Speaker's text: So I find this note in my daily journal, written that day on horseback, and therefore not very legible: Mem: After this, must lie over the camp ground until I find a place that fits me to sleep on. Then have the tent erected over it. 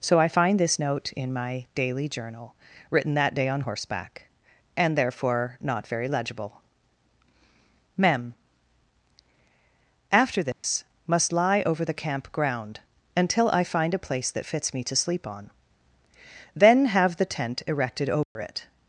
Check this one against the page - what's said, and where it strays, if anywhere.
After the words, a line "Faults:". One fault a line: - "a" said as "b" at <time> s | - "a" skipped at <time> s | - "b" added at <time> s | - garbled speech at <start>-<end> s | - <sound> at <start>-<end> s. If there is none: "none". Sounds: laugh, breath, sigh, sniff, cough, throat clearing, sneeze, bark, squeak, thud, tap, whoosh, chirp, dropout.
So I find this note in my daily journal, written that day on horseback, and therefore not very legible: Mem: After this, must lie over the camp ground until I find a place that fits me to sleep on. Then have the tent erected over it.
Faults:
- dropout at 10.5-10.6 s
- dropout at 18.2-18.4 s